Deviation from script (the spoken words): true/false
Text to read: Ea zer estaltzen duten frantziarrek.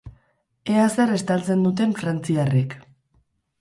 false